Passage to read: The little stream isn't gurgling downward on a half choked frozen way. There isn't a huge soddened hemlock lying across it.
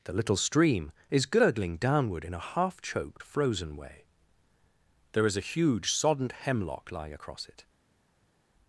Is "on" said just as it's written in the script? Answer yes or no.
no